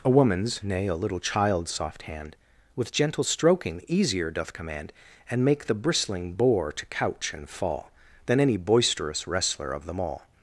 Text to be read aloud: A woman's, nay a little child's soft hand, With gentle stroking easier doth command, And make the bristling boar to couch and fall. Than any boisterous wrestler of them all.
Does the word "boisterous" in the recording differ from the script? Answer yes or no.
no